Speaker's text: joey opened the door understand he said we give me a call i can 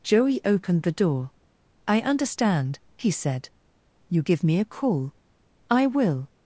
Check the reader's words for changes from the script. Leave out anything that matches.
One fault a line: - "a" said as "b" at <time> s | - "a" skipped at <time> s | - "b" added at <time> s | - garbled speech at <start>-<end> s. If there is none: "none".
- "i" added at 1.9 s
- "we" said as "you" at 4.1 s
- "can" said as "will" at 5.8 s